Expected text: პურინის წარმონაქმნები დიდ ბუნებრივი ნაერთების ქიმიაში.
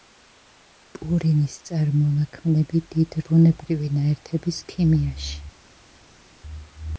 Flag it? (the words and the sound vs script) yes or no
no